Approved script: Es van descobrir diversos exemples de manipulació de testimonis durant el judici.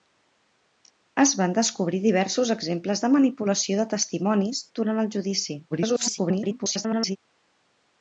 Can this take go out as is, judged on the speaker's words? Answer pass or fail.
fail